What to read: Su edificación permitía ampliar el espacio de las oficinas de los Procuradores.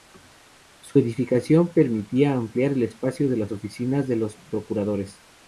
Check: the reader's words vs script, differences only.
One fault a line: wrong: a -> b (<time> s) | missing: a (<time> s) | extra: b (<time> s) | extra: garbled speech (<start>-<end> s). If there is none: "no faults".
no faults